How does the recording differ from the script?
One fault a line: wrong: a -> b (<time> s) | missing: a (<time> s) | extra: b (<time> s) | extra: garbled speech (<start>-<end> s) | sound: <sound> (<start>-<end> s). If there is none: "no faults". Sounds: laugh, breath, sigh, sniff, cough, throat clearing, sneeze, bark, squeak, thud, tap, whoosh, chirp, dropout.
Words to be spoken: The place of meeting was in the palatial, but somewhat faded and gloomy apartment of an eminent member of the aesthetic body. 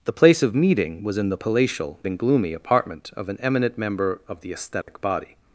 missing: but somewhat faded (2.0 s)
sound: dropout (4.8-4.9 s)